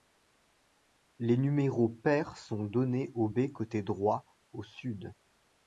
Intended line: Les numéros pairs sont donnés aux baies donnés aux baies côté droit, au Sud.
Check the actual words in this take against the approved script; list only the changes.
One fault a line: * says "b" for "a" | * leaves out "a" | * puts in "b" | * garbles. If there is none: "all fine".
* leaves out "donnés aux baies"